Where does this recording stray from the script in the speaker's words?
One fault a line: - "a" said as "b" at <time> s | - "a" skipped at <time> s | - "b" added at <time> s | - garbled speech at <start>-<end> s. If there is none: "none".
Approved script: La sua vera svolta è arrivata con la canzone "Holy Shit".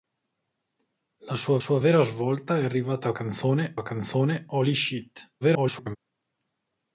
- "sua" added at 1.6 s
- "con" said as "canzone" at 3.1 s
- garbled speech at 5.4-6.0 s